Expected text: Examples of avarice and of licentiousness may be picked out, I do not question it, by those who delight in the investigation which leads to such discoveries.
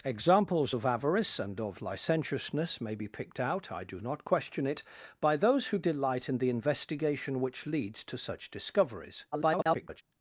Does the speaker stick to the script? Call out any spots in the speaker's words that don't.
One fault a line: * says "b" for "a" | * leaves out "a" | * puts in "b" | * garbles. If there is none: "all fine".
* garbles